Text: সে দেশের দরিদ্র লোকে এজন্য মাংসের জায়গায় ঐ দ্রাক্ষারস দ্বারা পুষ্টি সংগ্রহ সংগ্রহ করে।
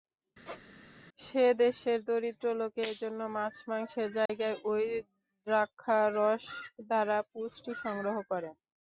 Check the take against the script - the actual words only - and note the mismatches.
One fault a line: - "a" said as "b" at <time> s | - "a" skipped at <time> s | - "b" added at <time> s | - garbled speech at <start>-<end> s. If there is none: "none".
- "মাছ" added at 3.4 s
- "সংগ্রহ" skipped at 8.2 s